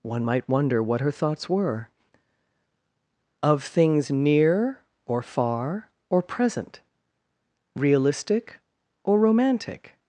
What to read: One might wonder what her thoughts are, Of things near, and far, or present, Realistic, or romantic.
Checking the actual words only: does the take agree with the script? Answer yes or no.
no